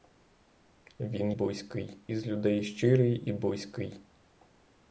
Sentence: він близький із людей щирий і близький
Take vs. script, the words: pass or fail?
pass